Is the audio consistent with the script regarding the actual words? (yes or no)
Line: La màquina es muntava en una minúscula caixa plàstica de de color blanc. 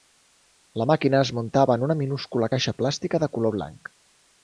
no